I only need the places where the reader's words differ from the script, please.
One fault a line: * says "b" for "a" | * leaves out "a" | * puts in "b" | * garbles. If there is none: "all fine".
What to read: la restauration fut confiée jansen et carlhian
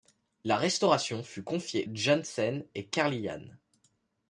all fine